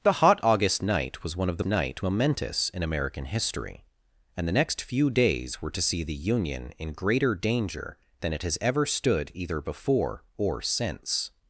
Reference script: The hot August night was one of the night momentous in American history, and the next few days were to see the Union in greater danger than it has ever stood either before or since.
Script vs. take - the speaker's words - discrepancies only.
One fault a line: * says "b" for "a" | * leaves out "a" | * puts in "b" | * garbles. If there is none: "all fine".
all fine